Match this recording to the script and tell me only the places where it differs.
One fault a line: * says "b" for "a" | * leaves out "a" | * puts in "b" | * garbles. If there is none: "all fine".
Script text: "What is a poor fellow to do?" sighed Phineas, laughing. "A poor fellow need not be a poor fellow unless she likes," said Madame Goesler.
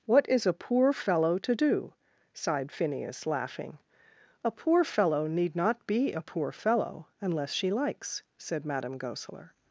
all fine